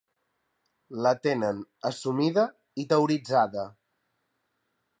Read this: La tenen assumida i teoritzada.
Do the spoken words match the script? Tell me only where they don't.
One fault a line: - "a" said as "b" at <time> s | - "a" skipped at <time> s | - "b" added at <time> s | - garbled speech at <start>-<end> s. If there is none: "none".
none